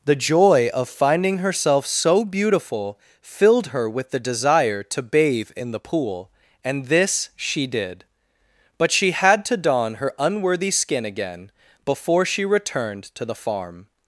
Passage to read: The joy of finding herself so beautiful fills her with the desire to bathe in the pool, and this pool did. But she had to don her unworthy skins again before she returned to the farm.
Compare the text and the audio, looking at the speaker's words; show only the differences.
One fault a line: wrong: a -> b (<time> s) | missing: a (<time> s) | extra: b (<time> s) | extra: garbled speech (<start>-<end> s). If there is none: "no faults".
wrong: fills -> filled (3.2 s)
wrong: pool -> she (7.3 s)
wrong: skins -> skin (10.7 s)